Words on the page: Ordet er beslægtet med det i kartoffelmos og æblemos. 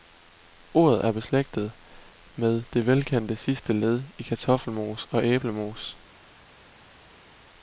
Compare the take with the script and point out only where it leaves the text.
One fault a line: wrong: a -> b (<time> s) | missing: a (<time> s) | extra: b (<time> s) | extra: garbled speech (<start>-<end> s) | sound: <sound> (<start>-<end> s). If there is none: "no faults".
extra: velkendte sidste led (2.9 s)